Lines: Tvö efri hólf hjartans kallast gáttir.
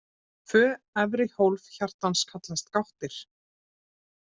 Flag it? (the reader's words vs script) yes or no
no